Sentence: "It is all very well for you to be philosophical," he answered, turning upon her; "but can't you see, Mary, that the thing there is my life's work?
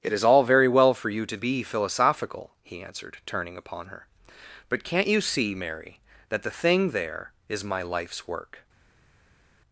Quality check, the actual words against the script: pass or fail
pass